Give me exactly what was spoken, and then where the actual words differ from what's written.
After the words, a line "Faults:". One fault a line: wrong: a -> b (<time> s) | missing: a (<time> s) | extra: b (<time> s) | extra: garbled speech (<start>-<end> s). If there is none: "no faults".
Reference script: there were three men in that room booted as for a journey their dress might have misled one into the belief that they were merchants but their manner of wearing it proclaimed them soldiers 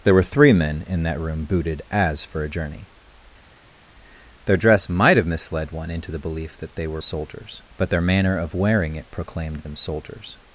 there were three men in that room booted as for a journey their dress might have misled one into the belief that they were soldiers but their manner of wearing it proclaimed them soldiers
Faults:
wrong: merchants -> soldiers (7.0 s)